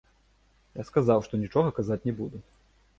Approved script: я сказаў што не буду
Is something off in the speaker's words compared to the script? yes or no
yes